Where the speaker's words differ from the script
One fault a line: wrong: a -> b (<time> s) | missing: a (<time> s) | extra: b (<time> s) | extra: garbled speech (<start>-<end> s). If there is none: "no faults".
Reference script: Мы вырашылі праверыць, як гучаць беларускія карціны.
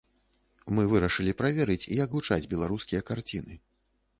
no faults